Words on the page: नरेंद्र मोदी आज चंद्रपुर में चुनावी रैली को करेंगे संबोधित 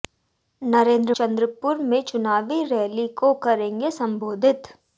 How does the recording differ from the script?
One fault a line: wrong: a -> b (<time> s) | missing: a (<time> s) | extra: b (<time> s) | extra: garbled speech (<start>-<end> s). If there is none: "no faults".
missing: मोदी आज (1.1 s)